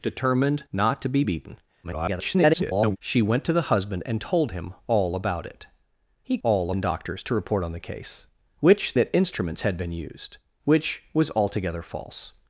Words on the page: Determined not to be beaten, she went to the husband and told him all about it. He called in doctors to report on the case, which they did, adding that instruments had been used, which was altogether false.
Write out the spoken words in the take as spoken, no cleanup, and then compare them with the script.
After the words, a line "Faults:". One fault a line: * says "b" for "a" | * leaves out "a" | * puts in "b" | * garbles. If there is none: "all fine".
Determined not to be beaten, [garbled] she went to the husband and told him all about it. He all in doctors to report on the case, which that instruments had been used, which was altogether false.
Faults:
* garbles
* says "all" for "called"
* leaves out "they did adding"